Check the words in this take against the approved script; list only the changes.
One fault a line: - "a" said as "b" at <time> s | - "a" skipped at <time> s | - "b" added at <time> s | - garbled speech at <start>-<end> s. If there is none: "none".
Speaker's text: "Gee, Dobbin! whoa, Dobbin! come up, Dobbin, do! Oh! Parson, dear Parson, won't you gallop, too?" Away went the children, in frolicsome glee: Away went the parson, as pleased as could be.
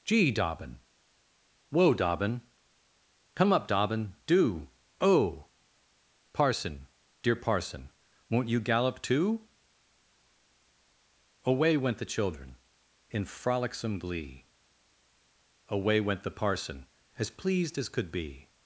none